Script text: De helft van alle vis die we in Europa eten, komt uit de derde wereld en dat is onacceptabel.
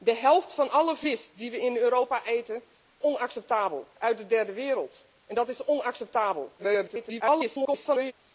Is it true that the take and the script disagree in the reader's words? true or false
true